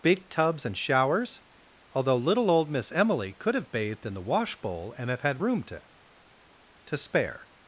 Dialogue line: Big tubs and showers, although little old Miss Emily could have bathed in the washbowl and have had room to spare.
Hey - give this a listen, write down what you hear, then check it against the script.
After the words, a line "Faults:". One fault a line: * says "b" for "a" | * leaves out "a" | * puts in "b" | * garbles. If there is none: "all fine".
Big tubs and showers, although little old Miss Emily could have bathed in the washbowl and have had room to to spare.
Faults:
* puts in "to"